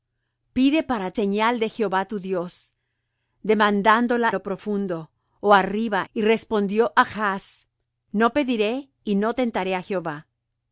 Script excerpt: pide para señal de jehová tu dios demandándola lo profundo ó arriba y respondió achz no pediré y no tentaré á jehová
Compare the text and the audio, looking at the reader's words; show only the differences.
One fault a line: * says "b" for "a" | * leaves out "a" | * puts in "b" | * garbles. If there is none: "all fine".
all fine